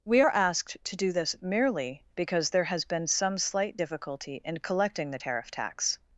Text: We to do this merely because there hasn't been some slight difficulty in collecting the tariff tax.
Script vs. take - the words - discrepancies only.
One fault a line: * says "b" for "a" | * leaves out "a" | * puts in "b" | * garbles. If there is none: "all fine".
* puts in "are asked"
* says "has" for "hasn't"